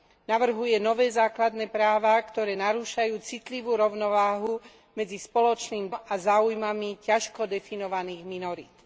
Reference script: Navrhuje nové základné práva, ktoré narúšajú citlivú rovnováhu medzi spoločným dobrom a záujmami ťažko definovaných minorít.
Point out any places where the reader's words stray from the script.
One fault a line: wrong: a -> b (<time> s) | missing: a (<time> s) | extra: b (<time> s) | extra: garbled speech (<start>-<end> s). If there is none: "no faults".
missing: dobrom (5.9 s)